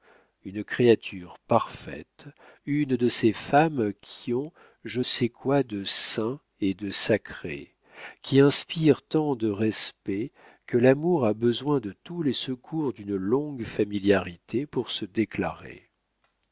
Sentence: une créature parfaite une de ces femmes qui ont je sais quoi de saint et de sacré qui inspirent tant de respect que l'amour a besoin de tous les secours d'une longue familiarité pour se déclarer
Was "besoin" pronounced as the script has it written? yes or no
yes